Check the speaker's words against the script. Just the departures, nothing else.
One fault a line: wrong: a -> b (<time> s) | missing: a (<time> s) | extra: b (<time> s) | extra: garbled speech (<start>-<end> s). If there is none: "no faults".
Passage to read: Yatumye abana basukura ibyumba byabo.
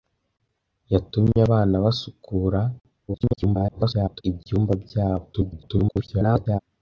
extra: garbled speech (3.1-4.2 s)
extra: garbled speech (5.3-6.6 s)